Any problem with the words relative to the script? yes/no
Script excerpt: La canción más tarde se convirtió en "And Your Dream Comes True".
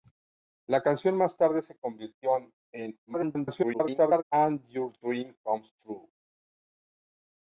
yes